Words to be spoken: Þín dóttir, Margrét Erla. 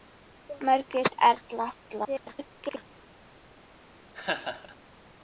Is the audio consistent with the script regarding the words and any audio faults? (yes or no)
no